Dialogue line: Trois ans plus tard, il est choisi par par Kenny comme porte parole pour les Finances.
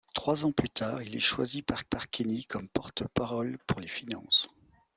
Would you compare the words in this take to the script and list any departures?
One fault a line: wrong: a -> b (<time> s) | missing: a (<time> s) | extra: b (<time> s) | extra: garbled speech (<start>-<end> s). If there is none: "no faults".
no faults